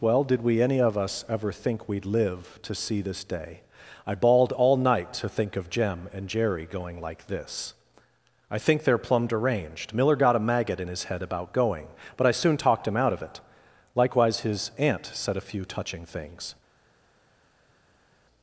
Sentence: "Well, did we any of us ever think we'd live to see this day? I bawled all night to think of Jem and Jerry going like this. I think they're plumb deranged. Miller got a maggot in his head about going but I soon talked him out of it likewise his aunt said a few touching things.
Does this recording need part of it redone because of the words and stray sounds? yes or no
no